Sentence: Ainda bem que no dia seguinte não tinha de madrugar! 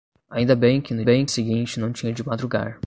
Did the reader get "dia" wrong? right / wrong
wrong